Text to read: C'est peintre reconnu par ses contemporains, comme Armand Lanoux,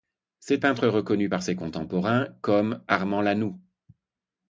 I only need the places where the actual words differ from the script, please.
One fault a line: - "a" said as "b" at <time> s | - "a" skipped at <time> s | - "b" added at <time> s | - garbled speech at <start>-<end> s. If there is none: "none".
none